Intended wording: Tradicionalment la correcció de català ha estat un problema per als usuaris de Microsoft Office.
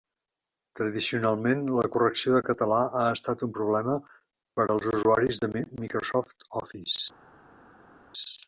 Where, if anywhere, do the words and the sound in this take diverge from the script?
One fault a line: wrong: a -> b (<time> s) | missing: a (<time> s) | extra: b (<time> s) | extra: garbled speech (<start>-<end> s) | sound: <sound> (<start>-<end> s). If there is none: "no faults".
no faults